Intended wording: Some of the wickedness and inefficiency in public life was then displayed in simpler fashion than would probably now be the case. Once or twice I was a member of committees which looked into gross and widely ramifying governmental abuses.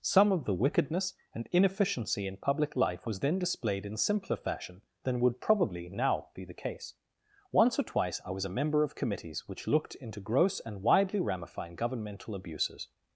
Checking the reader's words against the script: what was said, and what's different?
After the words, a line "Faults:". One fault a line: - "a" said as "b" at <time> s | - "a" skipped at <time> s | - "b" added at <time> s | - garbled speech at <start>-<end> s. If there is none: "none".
Some of the wickedness and inefficiency in public life was then displayed in simpler fashion than would probably now be the case. Once or twice I was a member of committees which looked into gross and widely ramifying governmental abuses.
Faults:
none